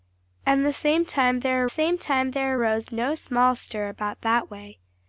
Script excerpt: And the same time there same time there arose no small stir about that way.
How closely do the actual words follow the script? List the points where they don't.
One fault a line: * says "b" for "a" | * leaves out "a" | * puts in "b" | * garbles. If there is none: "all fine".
all fine